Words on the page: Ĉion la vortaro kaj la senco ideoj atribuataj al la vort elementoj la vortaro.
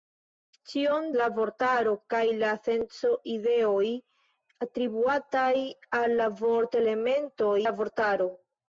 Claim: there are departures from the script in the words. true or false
false